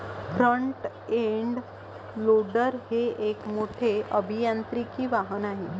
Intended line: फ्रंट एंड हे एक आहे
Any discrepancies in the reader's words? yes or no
yes